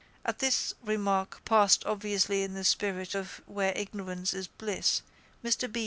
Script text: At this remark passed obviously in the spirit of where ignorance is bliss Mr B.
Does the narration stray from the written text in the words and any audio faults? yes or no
no